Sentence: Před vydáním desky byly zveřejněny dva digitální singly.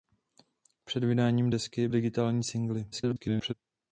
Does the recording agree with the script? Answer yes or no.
no